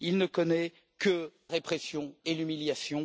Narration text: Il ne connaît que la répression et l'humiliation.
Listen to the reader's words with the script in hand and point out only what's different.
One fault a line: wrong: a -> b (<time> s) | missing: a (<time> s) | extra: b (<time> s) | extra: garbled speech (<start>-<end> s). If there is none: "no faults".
missing: la (1.3 s)